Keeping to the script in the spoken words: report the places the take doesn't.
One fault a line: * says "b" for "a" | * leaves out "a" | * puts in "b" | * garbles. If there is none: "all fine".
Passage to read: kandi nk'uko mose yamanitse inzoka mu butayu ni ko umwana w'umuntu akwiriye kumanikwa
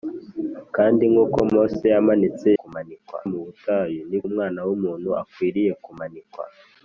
* says "kumanikwa" for "inzoka"
* leaves out "ko"